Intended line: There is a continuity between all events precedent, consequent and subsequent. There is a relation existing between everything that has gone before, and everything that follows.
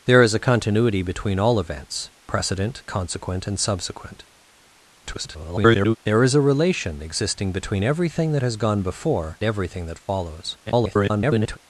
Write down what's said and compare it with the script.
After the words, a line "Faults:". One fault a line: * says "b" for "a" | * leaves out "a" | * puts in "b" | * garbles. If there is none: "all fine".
There is a continuity between all events precedent, consequent and subsequent. [garbled] There is a relation existing between everything that has gone before, everything that follows. [garbled]
Faults:
* garbles
* leaves out "and"
* garbles